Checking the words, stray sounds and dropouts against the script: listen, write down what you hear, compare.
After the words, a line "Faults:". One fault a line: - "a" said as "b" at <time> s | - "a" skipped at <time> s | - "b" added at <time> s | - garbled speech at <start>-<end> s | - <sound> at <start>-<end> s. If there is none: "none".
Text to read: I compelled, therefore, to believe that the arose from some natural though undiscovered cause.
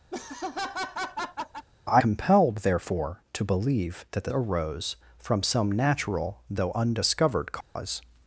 I compelled, therefore, to believe that the arose from some natural though undiscovered cause.
Faults:
- laugh at 0.1-1.7 s
- dropout at 7.6-7.8 s